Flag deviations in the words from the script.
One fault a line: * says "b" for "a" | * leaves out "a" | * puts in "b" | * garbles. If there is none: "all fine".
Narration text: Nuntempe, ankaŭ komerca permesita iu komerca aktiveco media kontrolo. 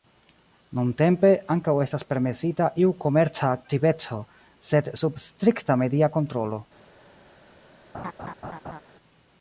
* says "estas" for "komerca"
* puts in "sed sub strikta"